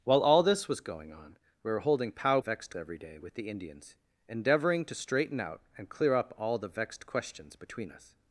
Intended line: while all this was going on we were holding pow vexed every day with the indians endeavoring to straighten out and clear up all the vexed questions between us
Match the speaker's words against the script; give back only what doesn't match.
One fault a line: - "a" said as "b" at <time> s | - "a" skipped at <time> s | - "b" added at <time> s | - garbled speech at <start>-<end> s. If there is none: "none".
none